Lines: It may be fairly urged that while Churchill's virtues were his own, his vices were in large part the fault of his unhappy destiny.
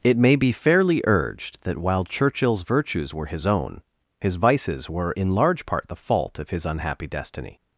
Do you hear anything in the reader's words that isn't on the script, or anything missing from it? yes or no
no